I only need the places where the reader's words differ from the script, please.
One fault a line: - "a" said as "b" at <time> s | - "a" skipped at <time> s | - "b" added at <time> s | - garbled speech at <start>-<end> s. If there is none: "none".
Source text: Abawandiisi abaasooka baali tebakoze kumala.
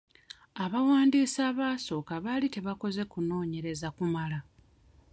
- "kunoonyereza" added at 3.1 s